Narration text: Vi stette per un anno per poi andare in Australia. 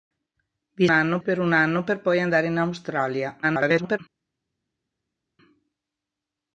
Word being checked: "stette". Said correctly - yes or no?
no